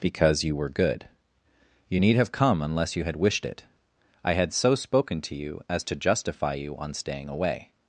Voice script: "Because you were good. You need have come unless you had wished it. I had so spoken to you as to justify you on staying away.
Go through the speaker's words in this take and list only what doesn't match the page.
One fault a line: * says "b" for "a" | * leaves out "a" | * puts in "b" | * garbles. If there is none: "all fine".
all fine